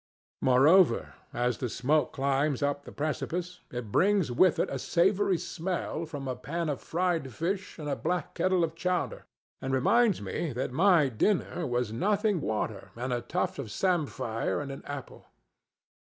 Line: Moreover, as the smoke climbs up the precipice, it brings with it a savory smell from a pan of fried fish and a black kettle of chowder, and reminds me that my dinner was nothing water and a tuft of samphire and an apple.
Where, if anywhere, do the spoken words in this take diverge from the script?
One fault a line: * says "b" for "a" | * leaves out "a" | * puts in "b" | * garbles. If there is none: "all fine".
all fine